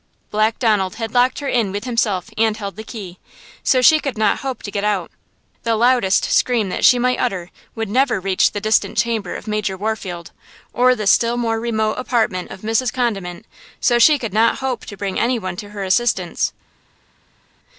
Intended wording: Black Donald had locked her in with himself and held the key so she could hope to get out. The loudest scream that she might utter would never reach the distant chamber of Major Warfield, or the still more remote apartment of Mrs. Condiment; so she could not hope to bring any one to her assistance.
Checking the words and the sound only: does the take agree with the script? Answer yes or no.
no